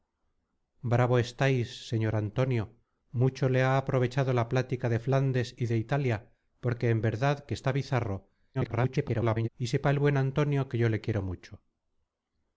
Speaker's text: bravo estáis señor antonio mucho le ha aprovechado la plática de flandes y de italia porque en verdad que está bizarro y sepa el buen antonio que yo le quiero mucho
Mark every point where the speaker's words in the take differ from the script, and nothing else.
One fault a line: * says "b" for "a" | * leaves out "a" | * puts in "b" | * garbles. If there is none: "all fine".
* garbles